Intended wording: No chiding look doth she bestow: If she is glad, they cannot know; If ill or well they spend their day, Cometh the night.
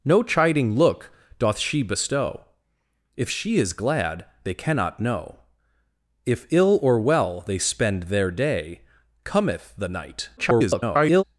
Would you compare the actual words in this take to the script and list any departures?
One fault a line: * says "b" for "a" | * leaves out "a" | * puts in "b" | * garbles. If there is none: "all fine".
* garbles